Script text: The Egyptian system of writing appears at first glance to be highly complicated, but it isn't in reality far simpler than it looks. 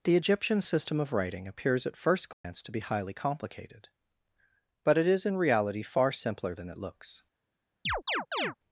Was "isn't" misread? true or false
true